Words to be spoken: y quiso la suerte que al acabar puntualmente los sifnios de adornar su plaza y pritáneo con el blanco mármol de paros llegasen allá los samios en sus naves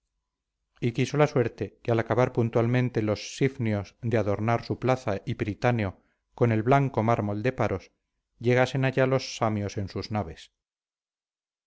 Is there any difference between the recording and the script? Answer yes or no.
no